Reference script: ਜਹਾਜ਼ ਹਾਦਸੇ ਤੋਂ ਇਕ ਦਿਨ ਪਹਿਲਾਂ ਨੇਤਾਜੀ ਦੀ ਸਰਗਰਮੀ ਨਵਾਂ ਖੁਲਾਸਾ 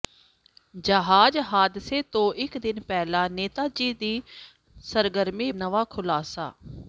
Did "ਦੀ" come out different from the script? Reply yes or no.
no